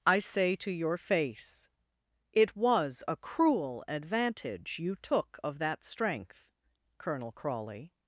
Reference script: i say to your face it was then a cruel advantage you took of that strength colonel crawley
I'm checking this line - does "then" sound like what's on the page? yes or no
no